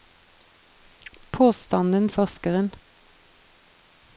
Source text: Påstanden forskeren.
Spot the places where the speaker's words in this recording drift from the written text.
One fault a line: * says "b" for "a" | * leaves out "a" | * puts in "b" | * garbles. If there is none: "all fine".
all fine